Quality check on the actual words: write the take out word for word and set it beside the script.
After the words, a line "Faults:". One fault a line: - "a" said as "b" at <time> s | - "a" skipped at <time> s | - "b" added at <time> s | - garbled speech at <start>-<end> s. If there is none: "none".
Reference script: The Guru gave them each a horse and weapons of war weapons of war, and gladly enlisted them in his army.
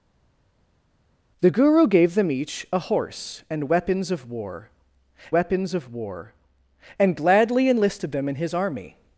The Guru gave them each a horse and weapons of war weapons of war, and gladly enlisted them in his army.
Faults:
none